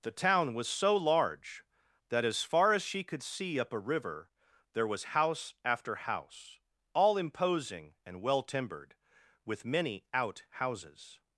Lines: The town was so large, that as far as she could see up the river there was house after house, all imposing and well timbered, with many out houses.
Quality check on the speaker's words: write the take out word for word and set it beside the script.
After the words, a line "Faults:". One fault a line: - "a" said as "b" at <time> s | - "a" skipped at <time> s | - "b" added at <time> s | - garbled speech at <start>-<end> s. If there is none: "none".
The town was so large, that as far as she could see up a river there was house after house, all imposing and well timbered, with many out houses.
Faults:
- "the" said as "a" at 3.7 s